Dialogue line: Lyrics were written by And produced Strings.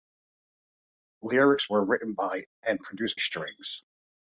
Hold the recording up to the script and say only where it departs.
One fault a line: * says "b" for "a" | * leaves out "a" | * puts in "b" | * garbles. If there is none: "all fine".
all fine